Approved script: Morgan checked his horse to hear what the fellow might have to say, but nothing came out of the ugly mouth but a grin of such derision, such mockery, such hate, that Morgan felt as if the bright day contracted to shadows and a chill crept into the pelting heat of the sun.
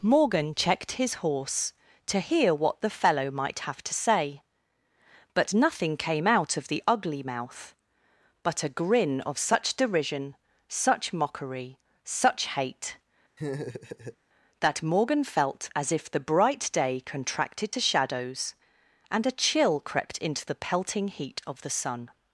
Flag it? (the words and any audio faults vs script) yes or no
yes